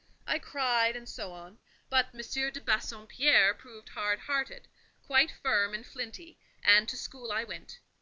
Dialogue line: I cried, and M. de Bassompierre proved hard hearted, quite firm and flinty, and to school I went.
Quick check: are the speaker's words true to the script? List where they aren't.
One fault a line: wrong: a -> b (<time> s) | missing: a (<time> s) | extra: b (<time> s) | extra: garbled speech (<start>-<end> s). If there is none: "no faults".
extra: so on but (1.1 s)